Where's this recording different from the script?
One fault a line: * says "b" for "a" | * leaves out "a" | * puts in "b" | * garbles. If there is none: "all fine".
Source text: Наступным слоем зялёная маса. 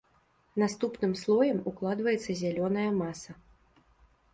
* puts in "укладваецца"